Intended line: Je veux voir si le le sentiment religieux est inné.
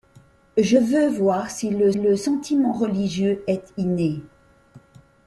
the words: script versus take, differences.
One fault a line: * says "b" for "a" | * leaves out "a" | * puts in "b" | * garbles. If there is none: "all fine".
all fine